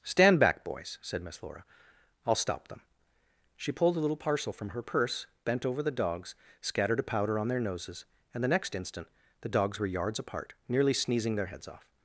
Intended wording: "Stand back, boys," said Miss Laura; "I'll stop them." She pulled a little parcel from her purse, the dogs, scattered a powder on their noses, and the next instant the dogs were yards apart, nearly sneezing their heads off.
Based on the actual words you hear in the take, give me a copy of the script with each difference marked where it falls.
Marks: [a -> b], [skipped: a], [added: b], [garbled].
"Stand back, boys," said Miss Laura; "I'll stop them." She pulled a little parcel from her purse, [added: bent over] the dogs, scattered a powder on their noses, and the next instant the dogs were yards apart, nearly sneezing their heads off.